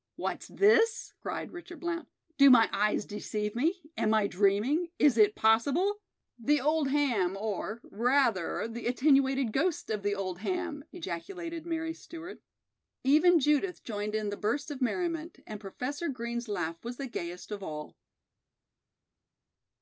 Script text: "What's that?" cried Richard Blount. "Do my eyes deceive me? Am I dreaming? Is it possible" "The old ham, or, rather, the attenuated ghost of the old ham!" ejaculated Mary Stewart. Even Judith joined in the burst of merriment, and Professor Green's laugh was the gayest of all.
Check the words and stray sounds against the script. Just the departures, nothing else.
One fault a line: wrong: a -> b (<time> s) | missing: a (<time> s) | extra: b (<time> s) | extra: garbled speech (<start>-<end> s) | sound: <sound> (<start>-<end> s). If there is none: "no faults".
wrong: that -> this (0.5 s)